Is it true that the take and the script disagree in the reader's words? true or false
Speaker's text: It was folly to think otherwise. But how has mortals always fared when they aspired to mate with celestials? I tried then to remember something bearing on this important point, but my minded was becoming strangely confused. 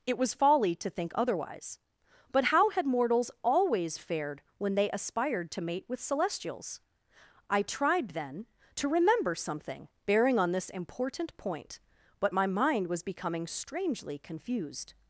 true